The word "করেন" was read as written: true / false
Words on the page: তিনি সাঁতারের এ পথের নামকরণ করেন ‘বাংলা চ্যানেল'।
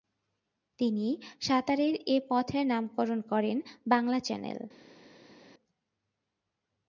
true